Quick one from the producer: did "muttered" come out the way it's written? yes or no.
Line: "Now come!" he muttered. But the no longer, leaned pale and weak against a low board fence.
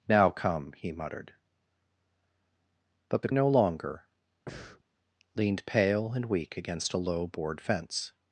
yes